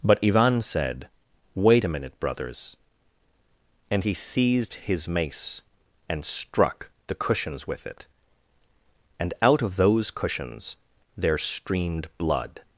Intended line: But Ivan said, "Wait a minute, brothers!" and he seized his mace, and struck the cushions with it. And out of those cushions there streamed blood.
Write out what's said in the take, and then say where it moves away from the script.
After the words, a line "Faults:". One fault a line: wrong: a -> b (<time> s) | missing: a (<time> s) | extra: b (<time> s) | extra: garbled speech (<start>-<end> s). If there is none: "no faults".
But Ivan said, "Wait a minute, brothers!" and he seized his mace, and struck the cushions with it. And out of those cushions there streamed blood.
Faults:
no faults